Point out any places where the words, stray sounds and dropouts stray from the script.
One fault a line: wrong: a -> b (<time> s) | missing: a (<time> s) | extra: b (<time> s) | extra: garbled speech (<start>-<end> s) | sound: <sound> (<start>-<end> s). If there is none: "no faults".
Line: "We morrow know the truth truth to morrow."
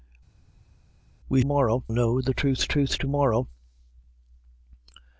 no faults